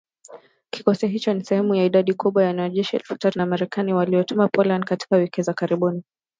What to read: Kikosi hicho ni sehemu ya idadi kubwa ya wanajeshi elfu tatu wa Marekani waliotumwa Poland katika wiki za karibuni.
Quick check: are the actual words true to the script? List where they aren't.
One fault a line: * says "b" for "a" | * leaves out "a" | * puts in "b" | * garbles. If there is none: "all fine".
all fine